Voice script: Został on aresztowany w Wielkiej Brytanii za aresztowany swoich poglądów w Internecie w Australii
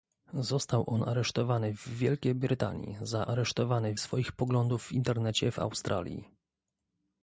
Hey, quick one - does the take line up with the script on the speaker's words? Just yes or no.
yes